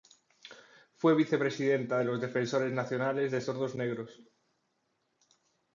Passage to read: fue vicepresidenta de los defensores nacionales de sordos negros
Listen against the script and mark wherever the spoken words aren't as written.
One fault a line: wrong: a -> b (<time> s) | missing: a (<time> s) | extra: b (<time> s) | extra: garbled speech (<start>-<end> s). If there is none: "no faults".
no faults